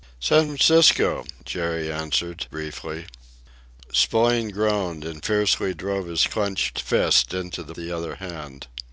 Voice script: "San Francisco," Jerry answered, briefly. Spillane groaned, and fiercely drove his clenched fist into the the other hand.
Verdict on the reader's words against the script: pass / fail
pass